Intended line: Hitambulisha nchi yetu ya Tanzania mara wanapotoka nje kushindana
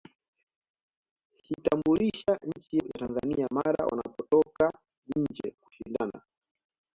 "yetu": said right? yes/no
no